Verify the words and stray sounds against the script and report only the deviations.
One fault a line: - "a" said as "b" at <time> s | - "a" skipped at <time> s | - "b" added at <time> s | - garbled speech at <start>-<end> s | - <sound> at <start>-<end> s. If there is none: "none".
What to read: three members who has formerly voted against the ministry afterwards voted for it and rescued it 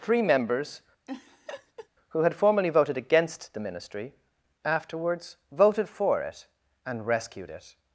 - laugh at 1.1-1.9 s
- "has" said as "had" at 2.2 s